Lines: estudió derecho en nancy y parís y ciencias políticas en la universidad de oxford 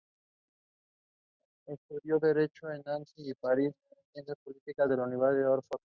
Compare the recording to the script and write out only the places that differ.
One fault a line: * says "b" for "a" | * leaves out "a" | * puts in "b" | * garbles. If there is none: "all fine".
all fine